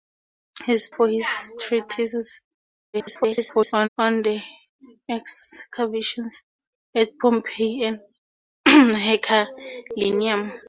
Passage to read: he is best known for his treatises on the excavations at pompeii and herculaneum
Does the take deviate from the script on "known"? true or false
true